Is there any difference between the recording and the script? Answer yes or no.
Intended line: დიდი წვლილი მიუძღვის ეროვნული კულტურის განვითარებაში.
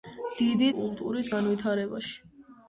yes